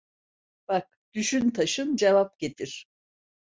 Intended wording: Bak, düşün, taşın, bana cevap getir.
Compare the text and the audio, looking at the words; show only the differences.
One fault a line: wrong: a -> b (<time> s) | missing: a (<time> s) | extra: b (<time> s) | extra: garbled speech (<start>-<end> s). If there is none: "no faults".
missing: bana (2.0 s)